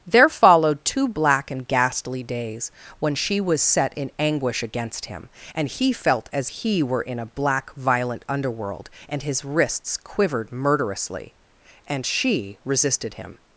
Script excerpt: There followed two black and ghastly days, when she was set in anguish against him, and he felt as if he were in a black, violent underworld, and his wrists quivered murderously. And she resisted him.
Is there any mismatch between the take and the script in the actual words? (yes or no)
yes